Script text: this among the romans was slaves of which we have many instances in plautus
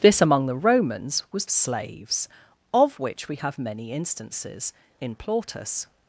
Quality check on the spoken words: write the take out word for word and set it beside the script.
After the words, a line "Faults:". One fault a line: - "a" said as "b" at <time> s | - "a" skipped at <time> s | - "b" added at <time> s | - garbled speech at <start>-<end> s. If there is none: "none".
this among the romans was slaves of which we have many instances in plautus
Faults:
none